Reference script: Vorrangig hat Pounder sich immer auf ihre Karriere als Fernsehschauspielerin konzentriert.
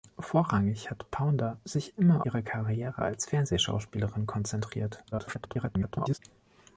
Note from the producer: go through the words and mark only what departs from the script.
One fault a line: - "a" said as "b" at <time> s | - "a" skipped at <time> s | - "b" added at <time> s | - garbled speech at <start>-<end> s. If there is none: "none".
- "auf" skipped at 2.3 s
- garbled speech at 5.1-6.2 s